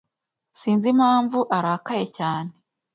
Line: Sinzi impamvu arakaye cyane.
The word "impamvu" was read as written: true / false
true